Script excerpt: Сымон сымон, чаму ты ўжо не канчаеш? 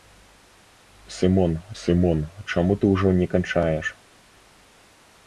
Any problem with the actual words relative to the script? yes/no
no